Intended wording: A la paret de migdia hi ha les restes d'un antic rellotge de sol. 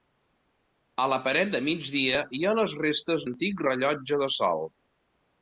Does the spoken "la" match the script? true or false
true